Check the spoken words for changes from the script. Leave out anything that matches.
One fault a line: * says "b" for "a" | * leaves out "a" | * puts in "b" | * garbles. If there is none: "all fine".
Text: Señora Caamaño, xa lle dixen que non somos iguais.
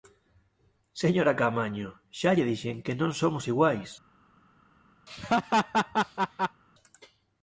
all fine